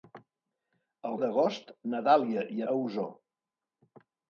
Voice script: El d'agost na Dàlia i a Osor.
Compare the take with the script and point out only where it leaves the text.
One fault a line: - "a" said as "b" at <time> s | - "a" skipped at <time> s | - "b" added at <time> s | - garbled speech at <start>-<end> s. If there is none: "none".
none